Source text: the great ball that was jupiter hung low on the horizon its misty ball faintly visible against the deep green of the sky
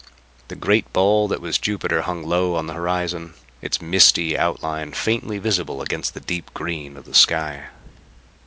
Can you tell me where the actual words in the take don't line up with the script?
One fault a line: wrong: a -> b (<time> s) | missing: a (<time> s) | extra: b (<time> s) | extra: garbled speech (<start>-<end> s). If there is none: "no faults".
wrong: ball -> outline (4.3 s)